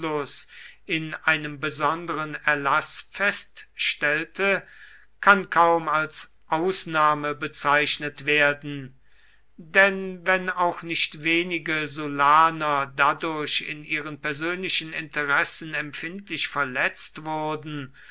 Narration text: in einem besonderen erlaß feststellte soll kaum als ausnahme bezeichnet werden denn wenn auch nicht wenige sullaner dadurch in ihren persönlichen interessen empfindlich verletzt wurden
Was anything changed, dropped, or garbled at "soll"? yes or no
yes